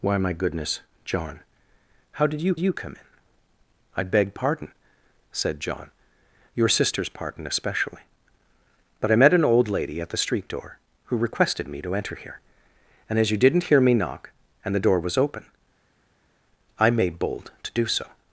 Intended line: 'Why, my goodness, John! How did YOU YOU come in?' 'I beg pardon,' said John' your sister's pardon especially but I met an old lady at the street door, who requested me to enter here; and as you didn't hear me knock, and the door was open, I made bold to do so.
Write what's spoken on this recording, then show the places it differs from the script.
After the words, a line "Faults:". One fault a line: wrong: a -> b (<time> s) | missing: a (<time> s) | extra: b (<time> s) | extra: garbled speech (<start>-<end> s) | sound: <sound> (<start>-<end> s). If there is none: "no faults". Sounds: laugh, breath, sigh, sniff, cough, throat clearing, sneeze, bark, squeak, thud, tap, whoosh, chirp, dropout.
'Why, my goodness, John! How did YOU YOU come in?' 'I beg pardon,' said John' your sister's pardon especially but I met an old lady at the street door, who requested me to enter here; and as you didn't hear me knock, and the door was open, I made bold to do so.
Faults:
no faults